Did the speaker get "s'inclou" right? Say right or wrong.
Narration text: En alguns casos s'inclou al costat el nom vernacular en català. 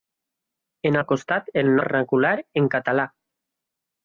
wrong